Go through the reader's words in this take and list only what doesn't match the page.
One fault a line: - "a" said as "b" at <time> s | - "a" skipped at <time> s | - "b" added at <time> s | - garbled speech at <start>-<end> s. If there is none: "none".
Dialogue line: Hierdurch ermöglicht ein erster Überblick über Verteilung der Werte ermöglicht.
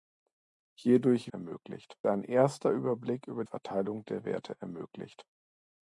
none